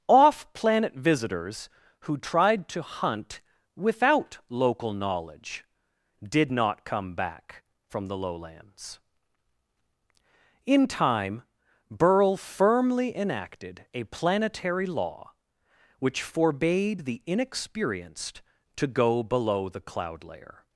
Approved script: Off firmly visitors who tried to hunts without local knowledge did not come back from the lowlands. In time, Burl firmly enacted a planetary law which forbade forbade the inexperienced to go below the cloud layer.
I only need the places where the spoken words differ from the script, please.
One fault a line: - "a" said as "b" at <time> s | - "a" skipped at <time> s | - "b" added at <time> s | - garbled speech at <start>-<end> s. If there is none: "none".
- "firmly" said as "planet" at 0.5 s
- "hunts" said as "hunt" at 2.8 s
- "forbade" skipped at 17.0 s